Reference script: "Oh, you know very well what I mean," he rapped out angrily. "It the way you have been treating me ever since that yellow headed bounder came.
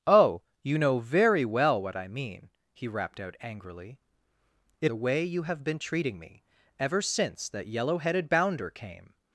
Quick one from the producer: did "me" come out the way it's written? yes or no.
yes